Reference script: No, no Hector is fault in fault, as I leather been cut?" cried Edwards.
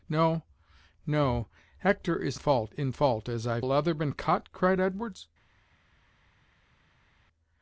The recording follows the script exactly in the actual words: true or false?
true